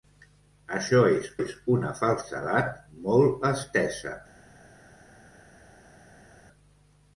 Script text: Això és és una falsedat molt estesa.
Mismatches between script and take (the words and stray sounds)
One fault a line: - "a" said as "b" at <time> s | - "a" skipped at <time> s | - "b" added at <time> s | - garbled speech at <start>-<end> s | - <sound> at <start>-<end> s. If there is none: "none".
none